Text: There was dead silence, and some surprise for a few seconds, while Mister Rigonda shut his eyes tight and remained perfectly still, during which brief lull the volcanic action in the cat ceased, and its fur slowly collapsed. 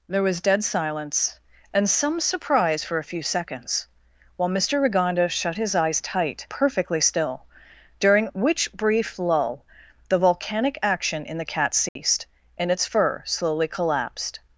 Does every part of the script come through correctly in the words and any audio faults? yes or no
no